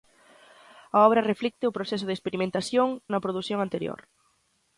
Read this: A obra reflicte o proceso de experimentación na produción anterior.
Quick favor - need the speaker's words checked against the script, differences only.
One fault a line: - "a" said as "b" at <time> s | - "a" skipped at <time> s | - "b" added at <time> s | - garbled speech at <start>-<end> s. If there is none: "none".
none